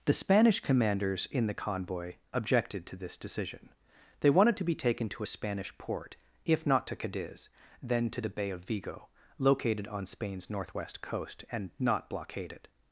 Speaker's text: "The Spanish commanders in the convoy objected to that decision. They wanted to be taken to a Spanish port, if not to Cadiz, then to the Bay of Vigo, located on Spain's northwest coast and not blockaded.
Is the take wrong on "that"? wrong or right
wrong